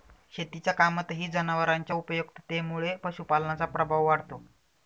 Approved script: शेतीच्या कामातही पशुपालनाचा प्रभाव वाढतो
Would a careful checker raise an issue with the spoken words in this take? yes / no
yes